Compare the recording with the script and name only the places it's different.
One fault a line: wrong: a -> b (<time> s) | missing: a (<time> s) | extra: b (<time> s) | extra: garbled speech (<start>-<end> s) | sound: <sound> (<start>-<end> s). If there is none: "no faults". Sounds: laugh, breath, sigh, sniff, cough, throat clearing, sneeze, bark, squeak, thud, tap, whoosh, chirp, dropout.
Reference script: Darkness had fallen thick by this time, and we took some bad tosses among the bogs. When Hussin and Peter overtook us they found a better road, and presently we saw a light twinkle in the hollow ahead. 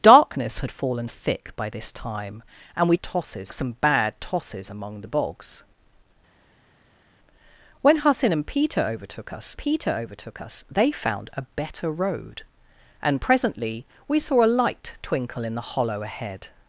wrong: took -> tosses (3.0 s)
extra: Peter overtook us (9.6 s)